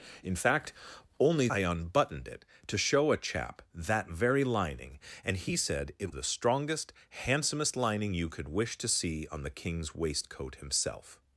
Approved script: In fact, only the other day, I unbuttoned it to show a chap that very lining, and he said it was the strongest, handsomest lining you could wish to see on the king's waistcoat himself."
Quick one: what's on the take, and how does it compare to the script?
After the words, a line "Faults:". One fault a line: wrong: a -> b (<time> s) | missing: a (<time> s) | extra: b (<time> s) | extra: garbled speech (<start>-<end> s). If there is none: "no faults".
In fact, only I unbuttoned it to show a chap that very lining, and he said it the strongest, handsomest lining you could wish to see on the king's waistcoat himself."
Faults:
missing: the other day (1.5 s)
missing: was (6.1 s)